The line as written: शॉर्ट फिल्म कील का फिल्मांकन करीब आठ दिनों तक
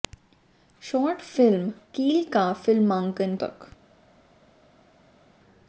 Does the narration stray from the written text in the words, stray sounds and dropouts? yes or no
yes